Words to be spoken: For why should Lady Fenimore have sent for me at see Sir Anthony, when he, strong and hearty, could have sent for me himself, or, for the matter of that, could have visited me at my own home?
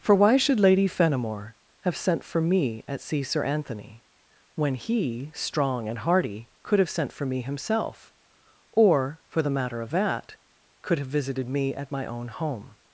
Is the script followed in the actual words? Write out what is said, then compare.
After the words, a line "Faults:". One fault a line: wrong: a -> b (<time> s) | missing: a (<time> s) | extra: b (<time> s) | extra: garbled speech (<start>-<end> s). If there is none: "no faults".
For why should Lady Fenimore have sent for me at see Sir Anthony, when he, strong and hearty, could have sent for me himself, or, for the matter of that, could have visited me at my own home?
Faults:
no faults